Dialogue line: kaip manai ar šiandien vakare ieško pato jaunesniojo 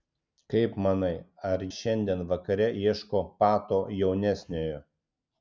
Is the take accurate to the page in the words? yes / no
yes